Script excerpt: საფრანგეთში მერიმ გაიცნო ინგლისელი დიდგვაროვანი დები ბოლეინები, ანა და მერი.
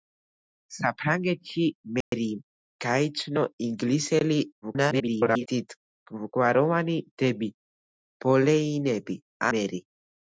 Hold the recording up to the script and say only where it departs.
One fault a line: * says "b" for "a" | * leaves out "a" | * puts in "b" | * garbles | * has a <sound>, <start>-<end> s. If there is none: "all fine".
* has a dropout, 2.0-2.1 s
* garbles
* leaves out "ანა და"